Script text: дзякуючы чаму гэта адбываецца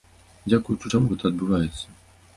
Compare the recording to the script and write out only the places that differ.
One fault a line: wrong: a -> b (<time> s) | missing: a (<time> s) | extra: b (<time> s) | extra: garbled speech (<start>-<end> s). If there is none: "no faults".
no faults